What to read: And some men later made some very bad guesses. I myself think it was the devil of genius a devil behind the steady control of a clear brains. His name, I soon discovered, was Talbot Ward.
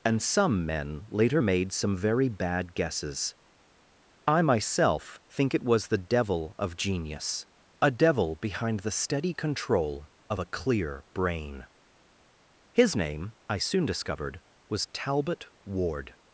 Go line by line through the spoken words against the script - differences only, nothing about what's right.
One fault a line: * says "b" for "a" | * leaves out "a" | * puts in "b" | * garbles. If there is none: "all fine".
* says "brain" for "brains"